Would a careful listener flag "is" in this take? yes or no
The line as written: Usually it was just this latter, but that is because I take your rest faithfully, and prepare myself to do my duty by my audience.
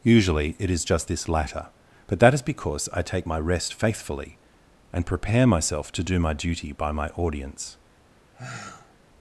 no